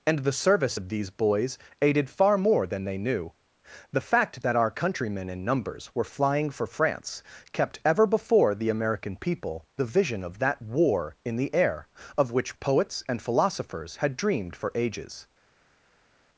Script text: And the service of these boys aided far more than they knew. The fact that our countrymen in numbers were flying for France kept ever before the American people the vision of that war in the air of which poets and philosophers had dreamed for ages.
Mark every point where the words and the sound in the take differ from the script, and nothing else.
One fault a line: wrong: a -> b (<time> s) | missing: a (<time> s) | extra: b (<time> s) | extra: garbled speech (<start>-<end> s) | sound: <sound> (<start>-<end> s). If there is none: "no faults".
no faults